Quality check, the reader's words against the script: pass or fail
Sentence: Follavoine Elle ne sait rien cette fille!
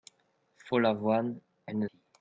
fail